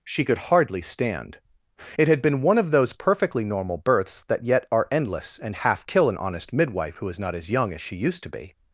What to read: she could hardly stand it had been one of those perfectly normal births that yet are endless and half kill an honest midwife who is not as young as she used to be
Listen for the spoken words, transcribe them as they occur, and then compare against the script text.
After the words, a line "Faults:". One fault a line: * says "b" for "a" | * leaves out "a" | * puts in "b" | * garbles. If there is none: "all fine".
she could hardly stand it had been one of those perfectly normal births that yet are endless and half kill an honest midwife who is not as young as she used to be
Faults:
all fine